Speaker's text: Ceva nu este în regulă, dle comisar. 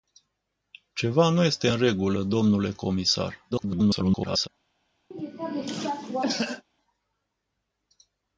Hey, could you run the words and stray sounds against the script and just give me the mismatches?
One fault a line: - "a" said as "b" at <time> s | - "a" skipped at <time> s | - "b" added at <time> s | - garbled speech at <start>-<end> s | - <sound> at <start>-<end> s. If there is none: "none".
- garbled speech at 3.5-4.5 s
- cough at 5.1-6.6 s